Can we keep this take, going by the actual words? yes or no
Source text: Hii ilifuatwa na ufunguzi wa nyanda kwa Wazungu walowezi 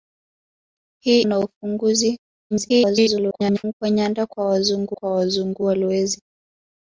no